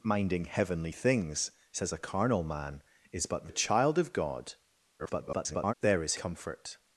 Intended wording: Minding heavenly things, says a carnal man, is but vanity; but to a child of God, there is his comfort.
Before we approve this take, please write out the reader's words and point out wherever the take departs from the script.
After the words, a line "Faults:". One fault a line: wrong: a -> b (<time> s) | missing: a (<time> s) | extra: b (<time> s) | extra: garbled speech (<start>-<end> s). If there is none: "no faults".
Minding heavenly things, says a carnal man, is but a child of God, [garbled] there is comfort.
Faults:
missing: vanity but to (3.5 s)
extra: garbled speech (5.0-5.7 s)
missing: his (6.1 s)